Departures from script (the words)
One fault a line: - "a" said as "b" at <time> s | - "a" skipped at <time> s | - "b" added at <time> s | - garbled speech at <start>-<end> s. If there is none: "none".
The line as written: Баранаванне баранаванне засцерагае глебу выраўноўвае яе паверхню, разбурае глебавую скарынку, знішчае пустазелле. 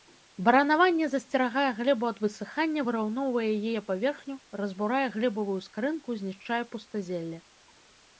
- "баранаванне" skipped at 1.1 s
- "ад высыхання" added at 2.1 s